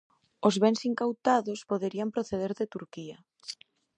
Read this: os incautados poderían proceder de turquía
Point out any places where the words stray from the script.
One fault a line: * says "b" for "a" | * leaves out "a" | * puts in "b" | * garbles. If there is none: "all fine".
* puts in "bens"